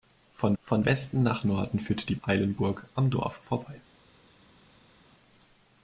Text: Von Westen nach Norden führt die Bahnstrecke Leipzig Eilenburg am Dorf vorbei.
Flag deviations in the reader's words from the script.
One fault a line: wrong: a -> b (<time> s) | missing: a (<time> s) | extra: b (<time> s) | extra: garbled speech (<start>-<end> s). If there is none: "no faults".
extra: von (0.6 s)
missing: Bahnstrecke Leipzig (2.2 s)